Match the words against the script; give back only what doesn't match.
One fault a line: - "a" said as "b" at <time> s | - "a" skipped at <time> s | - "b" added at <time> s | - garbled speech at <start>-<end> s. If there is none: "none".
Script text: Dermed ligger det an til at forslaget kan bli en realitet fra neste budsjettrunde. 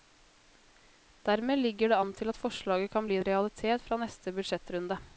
none